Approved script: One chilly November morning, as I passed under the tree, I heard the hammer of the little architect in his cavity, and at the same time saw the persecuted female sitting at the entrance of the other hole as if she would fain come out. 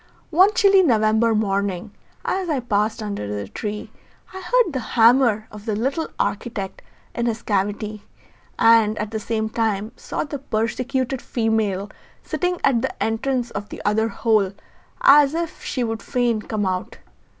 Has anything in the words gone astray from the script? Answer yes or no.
no